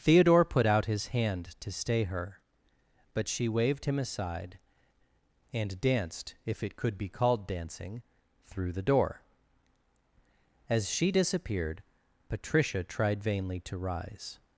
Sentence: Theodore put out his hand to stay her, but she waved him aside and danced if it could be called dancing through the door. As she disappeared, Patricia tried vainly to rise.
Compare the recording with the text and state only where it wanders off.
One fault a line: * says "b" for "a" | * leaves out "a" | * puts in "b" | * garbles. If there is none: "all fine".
all fine